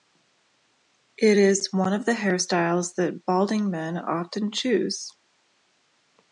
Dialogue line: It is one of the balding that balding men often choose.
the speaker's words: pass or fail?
fail